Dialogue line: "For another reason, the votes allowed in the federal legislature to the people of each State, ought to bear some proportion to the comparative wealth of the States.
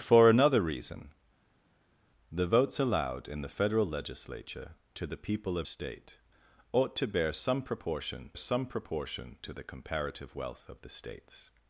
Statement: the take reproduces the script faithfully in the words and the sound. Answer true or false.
false